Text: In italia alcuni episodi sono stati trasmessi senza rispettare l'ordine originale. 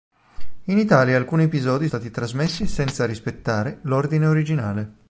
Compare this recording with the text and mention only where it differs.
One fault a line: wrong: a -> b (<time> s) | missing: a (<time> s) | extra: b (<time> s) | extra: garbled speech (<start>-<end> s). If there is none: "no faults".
missing: sono (1.9 s)